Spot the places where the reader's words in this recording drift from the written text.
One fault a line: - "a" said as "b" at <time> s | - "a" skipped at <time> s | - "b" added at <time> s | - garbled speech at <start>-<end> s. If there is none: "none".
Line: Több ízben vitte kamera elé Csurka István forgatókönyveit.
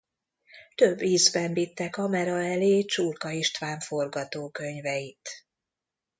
none